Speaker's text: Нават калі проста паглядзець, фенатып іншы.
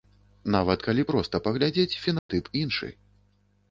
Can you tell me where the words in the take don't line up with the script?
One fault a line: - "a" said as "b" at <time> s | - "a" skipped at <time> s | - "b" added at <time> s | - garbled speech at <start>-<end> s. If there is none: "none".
none